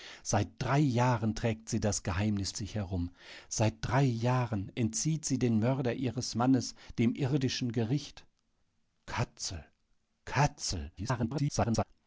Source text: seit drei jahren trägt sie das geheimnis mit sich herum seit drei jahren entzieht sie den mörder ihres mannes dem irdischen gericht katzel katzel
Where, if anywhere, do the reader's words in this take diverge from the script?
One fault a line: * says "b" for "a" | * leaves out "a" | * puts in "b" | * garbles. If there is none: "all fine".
* leaves out "mit"
* garbles